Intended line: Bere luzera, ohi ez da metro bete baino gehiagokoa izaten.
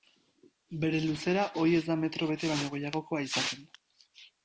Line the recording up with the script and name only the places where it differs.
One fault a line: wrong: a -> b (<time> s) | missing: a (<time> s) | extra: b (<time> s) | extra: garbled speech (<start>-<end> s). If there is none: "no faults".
no faults